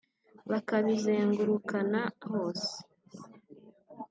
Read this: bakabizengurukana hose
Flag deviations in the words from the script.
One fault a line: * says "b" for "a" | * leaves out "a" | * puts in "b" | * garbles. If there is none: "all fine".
all fine